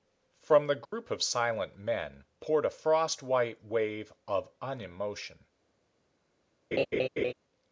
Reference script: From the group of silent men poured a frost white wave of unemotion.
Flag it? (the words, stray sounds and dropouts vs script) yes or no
yes